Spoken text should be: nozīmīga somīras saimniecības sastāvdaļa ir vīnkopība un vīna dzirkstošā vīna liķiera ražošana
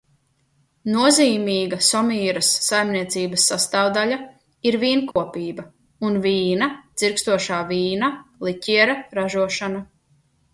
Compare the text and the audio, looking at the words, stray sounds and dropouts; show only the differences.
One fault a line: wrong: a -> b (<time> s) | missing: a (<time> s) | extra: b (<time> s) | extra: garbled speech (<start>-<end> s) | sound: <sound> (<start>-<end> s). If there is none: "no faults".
sound: dropout (5.1-5.2 s)